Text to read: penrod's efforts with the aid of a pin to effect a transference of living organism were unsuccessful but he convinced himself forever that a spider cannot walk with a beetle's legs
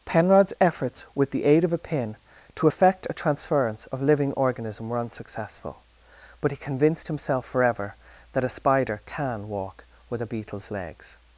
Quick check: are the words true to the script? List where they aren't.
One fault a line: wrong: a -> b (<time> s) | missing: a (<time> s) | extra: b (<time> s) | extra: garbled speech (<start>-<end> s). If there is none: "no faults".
wrong: cannot -> can (9.0 s)